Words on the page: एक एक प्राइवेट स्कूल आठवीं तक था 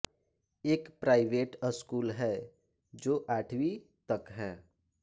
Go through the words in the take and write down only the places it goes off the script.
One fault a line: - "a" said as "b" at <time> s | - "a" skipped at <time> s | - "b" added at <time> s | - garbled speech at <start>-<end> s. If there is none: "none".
- "एक" skipped at 0.9 s
- "है जो" added at 2.1 s
- "था" said as "है" at 4.3 s